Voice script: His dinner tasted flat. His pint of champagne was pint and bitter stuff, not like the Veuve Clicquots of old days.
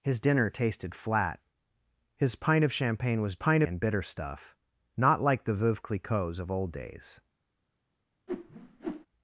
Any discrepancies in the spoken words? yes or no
no